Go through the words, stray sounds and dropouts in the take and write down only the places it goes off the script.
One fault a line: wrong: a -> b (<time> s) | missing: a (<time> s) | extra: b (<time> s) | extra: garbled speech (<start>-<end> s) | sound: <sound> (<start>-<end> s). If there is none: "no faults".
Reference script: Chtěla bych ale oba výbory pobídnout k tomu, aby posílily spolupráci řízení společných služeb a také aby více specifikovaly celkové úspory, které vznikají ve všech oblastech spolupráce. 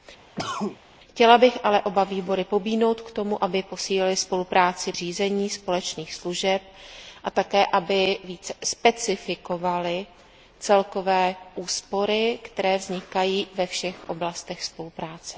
sound: cough (0.4-0.8 s)